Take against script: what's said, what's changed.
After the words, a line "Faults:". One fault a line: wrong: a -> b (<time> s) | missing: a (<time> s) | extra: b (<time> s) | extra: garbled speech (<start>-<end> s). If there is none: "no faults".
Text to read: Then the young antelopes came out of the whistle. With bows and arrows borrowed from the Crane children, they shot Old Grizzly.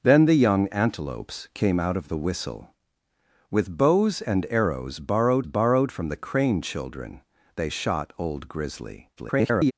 Then the young antelopes came out of the whistle. With bows and arrows borrowed borrowed from the Crane children, they shot Old Grizzly. [garbled]
Faults:
extra: borrowed (5.4 s)
extra: garbled speech (9.2-9.7 s)